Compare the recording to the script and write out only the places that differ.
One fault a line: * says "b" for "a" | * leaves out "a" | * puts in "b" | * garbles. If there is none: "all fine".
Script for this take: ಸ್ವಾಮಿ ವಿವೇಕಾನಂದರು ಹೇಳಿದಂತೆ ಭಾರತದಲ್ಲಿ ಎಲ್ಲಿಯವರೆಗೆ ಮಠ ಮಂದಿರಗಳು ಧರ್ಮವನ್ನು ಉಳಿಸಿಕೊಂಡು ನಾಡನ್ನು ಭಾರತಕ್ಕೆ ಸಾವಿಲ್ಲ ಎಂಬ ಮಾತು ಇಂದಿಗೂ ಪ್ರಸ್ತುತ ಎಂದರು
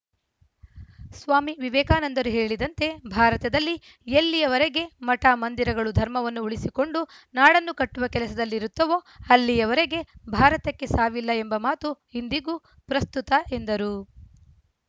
* puts in "ಕಟ್ಟುವ ಕೆಲಸದಲ್ಲಿರುತ್ತವೋ ಅಲ್ಲಿಯವರೆಗೆ"